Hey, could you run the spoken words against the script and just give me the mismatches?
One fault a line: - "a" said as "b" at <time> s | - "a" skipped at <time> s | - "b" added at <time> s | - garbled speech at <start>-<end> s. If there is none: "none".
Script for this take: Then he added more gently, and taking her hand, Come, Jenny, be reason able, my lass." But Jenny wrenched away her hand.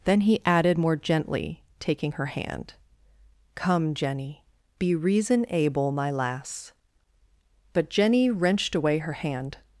- "and" skipped at 1.6 s